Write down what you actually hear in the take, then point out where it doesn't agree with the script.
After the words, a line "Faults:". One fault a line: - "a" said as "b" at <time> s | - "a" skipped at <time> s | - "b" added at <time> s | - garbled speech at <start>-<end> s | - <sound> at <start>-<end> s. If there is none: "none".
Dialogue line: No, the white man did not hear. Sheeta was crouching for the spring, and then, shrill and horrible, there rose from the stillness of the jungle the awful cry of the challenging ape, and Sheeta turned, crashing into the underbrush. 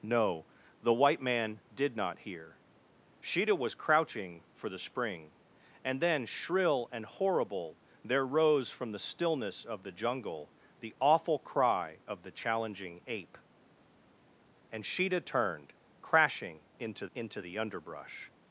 No, the white man did not hear. Sheeta was crouching for the spring, and then, shrill and horrible, there rose from the stillness of the jungle the awful cry of the challenging ape, and Sheeta turned, crashing into into the underbrush.
Faults:
- "into" added at 17.1 s